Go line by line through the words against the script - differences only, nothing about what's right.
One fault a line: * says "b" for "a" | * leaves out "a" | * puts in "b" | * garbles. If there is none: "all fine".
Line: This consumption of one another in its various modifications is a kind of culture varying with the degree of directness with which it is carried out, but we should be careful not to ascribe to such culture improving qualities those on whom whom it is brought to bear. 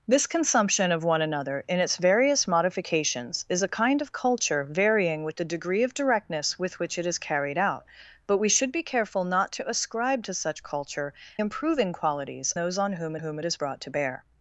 all fine